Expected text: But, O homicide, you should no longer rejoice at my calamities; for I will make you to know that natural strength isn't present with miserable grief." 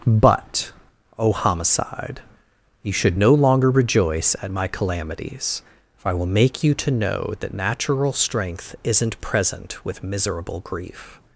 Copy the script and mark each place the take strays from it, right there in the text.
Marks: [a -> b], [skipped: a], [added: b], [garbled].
But, O homicide, you should no longer rejoice at my calamities; for I will make you to know that natural strength isn't present with miserable grief."